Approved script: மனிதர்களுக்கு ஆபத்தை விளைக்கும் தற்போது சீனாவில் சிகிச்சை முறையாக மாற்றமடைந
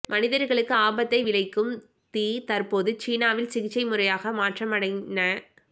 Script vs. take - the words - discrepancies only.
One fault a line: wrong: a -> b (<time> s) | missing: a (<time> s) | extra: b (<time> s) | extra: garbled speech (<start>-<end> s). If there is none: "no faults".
extra: தீ (2.1 s)